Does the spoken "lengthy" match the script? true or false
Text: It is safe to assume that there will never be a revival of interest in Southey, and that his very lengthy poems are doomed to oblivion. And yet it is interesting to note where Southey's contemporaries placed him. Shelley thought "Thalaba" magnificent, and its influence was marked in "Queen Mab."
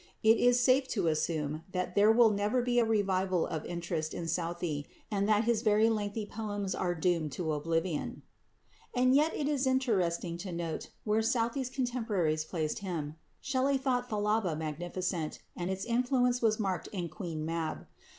true